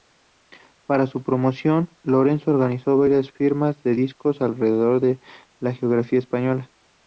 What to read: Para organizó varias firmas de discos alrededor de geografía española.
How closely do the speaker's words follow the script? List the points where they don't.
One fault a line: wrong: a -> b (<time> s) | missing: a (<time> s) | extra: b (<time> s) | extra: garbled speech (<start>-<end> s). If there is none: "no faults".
extra: su promoción Lorenzo (1.1 s)
extra: la (5.6 s)